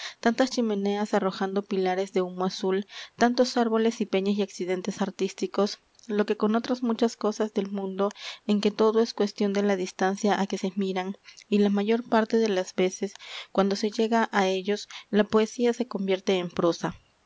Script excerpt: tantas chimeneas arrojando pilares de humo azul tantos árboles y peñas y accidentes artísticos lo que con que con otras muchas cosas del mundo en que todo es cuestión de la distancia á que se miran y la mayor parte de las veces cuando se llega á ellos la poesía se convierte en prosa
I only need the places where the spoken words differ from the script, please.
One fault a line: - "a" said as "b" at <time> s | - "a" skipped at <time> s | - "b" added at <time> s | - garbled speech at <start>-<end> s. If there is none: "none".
- "que con" skipped at 6.5 s